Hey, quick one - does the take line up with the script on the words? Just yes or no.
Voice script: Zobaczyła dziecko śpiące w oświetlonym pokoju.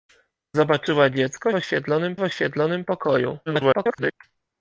no